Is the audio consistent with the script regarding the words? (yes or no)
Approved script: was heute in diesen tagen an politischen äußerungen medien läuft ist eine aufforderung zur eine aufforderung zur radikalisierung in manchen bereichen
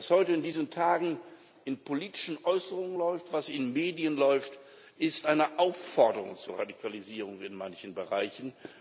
no